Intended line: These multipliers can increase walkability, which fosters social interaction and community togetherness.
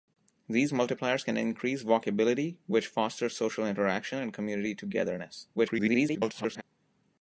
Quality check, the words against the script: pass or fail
fail